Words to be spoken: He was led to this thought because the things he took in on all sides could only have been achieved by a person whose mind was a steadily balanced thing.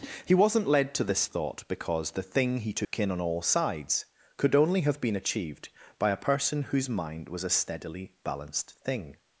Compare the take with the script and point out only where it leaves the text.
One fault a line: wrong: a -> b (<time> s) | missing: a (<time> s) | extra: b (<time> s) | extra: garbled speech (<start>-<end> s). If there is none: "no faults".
wrong: was -> wasn't (0.3 s)
wrong: things -> thing (2.2 s)